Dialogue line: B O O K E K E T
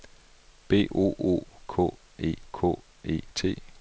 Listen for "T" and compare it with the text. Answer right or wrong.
right